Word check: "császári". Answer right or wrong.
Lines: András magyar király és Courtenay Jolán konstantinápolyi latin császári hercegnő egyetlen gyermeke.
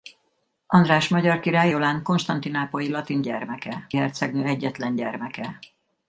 wrong